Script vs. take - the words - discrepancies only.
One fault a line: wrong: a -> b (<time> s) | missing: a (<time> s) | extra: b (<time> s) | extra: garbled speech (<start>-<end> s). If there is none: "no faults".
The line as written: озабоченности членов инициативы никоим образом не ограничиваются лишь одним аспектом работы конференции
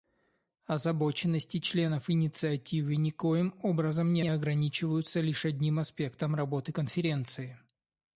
extra: не (4.2 s)